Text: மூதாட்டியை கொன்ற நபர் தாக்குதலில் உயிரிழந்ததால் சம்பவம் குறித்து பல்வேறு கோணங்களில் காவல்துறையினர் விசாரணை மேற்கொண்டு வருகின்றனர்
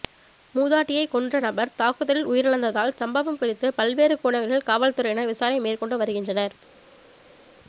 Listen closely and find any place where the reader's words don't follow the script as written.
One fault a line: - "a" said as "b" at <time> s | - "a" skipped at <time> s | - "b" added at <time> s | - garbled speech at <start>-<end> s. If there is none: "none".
none